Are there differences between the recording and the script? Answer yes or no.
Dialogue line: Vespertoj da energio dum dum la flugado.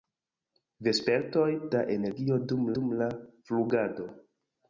no